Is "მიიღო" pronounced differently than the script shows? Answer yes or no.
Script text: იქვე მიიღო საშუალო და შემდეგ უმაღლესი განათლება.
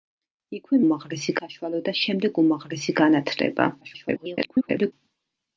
yes